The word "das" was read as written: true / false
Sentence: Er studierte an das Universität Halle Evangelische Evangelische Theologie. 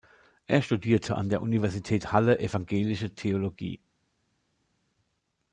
false